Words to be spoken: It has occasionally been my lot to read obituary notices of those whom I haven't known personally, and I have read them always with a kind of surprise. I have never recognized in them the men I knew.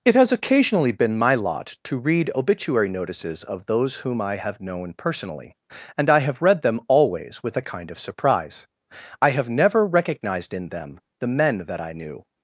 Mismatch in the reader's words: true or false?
true